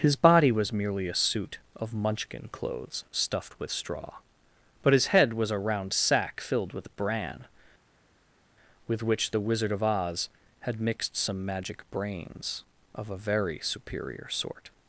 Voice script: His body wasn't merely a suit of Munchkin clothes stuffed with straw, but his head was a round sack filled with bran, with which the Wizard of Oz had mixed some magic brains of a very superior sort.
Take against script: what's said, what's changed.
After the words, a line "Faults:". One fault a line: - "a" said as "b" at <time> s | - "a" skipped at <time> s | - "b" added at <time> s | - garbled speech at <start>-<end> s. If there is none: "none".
His body was merely a suit of Munchkin clothes stuffed with straw, but his head was a round sack filled with bran, with which the Wizard of Oz had mixed some magic brains of a very superior sort.
Faults:
- "wasn't" said as "was" at 0.5 s